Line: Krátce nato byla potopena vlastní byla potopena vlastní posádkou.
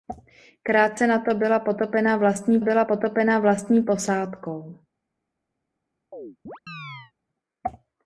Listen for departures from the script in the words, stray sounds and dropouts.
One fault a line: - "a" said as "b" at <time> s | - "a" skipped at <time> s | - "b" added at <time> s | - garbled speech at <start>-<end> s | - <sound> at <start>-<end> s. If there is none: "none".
- chirp at 6.1-7.1 s